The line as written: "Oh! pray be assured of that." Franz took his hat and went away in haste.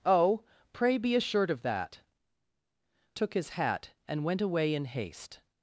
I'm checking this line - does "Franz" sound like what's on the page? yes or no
no